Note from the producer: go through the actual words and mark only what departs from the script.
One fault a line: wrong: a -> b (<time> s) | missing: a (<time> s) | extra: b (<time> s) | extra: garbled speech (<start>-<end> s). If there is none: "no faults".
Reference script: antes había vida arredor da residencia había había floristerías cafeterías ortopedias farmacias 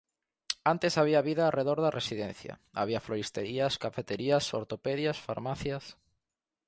missing: había (3.0 s)